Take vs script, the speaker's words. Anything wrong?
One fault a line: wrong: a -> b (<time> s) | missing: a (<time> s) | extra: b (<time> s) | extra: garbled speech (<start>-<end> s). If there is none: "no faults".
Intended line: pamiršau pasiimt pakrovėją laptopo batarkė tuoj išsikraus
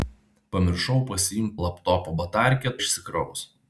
missing: pakrovėją (1.5 s)
missing: tuoj (2.8 s)